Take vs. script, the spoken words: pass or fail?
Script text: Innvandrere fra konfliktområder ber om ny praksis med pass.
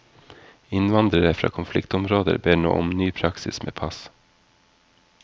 fail